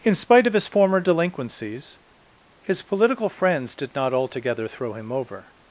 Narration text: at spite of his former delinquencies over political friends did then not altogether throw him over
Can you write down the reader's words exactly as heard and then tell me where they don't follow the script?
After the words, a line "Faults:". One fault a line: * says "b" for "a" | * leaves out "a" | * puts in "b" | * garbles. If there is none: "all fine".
in spite of his former delinquencies his political friends did not altogether throw him over
Faults:
* says "in" for "at"
* says "his" for "over"
* leaves out "then"